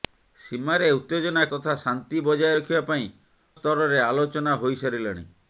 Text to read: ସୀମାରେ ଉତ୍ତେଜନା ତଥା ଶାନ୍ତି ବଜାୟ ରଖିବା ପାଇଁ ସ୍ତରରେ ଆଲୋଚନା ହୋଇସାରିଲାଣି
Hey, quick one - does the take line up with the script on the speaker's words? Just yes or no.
yes